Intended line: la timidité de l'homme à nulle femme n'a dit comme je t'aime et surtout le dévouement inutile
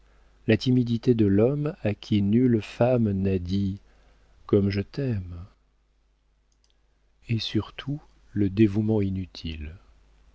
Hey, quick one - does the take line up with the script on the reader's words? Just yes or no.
no